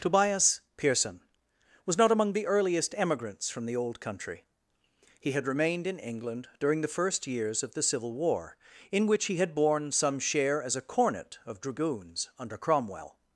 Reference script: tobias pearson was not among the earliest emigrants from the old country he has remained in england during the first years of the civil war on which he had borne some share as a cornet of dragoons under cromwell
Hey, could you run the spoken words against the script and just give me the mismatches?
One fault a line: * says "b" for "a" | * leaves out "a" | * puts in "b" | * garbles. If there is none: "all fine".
* says "had" for "has"
* says "in" for "on"